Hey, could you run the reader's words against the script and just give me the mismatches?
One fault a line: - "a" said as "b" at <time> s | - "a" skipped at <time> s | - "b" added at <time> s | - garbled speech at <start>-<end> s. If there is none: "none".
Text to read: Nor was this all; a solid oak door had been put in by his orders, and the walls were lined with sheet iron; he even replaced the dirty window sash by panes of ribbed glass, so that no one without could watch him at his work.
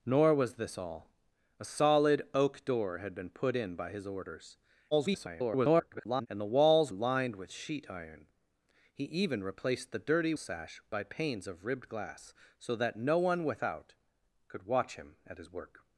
- garbled speech at 4.9-6.3 s
- "were" skipped at 6.9 s
- "window" skipped at 10.3 s